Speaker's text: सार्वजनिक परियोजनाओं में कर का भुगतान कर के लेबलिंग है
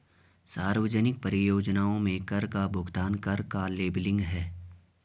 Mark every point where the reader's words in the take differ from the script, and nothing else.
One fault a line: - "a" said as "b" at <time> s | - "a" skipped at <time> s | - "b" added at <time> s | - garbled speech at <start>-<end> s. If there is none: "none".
- "के" said as "का" at 3.4 s